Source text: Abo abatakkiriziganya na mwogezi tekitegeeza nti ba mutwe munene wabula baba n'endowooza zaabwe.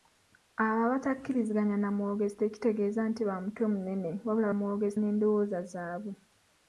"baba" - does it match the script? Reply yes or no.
no